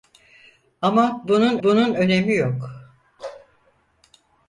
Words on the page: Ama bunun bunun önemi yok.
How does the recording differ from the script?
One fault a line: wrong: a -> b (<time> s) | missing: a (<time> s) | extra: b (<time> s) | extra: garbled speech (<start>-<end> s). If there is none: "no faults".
no faults